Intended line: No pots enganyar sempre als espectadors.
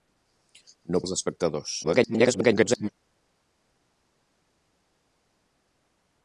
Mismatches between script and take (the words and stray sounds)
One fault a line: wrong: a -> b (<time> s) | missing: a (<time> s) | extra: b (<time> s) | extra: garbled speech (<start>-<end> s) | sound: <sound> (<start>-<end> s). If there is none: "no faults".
missing: pots enganyar sempre (1.0 s)
extra: garbled speech (1.8-2.9 s)